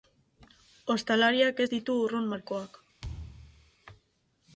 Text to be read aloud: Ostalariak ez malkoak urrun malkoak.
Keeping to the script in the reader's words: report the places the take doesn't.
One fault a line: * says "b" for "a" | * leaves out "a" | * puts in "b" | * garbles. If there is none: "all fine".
* says "ditu" for "malkoak"